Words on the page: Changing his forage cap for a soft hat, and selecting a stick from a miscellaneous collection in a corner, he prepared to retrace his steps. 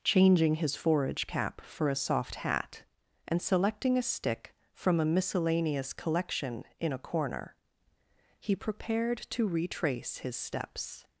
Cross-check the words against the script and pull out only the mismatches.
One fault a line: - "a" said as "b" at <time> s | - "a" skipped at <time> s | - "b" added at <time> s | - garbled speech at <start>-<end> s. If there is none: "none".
none